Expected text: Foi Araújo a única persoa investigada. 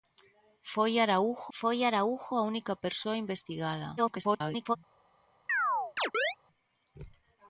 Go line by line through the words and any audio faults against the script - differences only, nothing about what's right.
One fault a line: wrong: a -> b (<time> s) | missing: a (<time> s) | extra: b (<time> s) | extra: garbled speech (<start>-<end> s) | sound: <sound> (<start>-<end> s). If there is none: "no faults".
extra: foi Araújo (1.6 s)
extra: garbled speech (4.0-4.8 s)
sound: chirp (5.5-6.4 s)